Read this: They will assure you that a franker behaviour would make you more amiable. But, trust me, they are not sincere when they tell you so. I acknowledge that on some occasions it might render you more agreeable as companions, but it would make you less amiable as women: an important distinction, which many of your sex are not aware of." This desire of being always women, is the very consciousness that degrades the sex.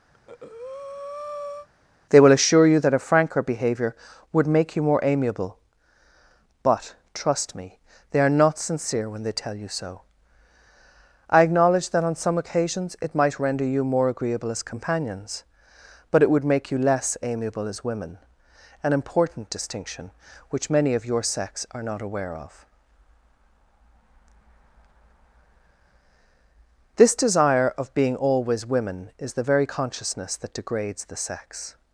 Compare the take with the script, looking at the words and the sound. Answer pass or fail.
fail